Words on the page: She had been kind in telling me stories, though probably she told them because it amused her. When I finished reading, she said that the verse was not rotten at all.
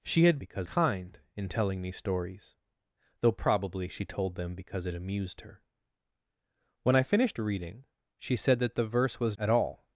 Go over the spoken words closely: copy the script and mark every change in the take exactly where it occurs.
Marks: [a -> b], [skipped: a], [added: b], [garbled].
She had [been -> because] kind in telling me stories, though probably she told them because it amused her. When I finished reading, she said that the verse was [skipped: not rotten] at all.